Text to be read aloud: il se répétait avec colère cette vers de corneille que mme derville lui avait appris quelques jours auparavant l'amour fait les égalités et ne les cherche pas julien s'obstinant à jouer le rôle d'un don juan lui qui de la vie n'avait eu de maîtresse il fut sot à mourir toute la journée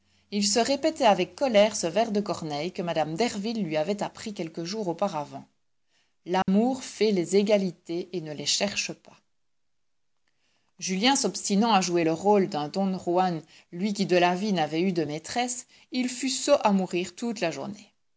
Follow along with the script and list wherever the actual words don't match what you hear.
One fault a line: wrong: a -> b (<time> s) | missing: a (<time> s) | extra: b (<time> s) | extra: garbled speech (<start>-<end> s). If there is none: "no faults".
wrong: cette -> ce (1.8 s)